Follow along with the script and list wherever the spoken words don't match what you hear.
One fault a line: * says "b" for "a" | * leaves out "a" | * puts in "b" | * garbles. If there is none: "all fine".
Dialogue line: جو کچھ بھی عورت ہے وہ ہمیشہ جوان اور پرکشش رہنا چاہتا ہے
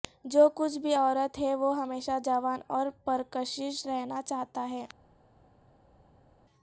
all fine